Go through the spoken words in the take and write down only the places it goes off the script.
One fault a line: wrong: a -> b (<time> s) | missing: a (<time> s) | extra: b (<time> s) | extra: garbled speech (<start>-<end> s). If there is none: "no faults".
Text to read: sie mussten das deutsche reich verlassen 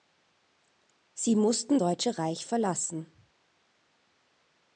missing: das (1.8 s)